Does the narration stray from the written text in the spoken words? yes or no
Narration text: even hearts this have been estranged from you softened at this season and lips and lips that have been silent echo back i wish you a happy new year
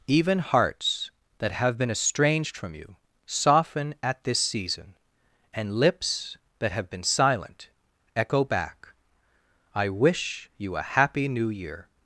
yes